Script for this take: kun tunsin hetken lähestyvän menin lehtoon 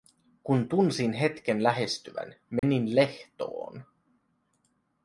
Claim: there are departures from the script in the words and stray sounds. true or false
true